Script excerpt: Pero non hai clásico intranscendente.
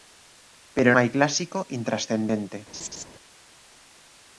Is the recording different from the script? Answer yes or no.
yes